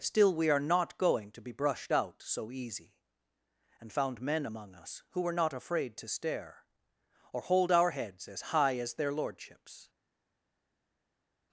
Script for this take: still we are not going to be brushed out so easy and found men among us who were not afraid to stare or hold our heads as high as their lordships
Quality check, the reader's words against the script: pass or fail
pass